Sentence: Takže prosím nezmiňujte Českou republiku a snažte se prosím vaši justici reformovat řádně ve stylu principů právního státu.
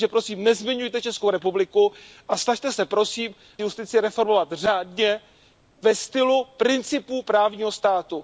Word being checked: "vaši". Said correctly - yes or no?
no